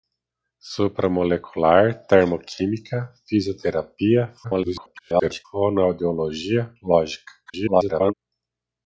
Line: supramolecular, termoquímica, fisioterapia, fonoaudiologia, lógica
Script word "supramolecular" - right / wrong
right